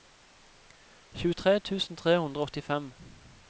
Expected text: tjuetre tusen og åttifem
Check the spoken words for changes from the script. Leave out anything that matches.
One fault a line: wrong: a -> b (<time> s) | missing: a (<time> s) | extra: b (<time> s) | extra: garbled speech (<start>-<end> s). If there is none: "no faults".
extra: tre hundre (2.0 s)